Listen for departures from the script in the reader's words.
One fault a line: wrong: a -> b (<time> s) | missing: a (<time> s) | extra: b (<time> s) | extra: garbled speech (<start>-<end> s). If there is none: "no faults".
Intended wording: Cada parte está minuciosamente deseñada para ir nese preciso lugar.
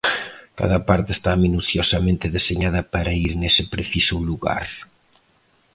no faults